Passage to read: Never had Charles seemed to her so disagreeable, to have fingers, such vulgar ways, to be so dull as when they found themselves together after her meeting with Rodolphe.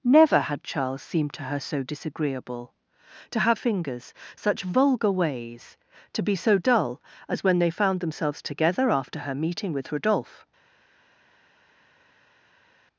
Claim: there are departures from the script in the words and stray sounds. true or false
false